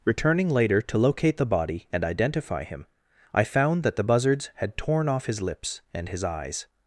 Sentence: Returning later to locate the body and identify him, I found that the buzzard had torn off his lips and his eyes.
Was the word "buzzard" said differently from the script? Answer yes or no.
yes